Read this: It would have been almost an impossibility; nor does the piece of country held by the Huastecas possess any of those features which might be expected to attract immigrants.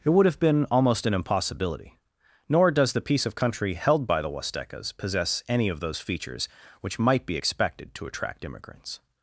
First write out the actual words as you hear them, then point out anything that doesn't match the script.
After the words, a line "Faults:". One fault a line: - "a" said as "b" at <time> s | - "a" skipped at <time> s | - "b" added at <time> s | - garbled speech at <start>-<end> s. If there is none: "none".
It would have been almost an impossibility; nor does the piece of country held by the Huastecas possess any of those features which might be expected to attract immigrants.
Faults:
none